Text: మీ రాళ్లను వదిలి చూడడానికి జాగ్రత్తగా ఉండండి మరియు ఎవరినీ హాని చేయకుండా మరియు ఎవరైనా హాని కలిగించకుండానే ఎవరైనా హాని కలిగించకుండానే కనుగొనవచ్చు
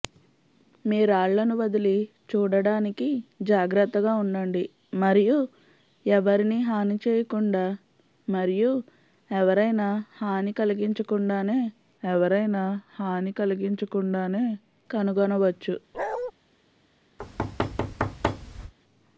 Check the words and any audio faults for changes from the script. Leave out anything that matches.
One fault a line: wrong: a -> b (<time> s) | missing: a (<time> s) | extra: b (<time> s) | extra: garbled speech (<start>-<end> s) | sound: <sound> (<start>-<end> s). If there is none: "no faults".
sound: bark (15.9-16.3 s)
sound: thud (17.2-18.7 s)